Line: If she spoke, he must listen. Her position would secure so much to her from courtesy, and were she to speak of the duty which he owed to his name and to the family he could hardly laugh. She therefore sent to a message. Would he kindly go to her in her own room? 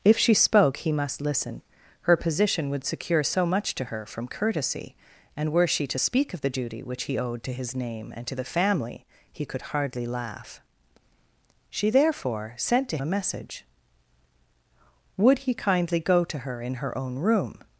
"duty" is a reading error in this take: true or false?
false